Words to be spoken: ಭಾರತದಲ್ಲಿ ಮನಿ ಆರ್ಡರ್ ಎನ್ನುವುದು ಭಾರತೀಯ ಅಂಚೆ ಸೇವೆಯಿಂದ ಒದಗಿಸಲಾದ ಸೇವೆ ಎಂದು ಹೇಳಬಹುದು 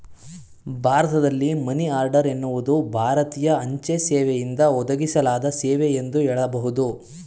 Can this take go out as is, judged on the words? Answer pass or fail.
pass